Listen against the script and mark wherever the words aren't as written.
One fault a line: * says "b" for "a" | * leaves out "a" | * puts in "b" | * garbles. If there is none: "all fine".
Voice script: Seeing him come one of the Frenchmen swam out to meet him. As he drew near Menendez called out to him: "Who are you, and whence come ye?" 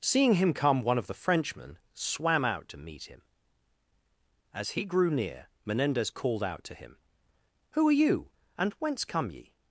* says "grew" for "drew"